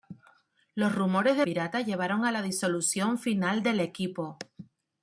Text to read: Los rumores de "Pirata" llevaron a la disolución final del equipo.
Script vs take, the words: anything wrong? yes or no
no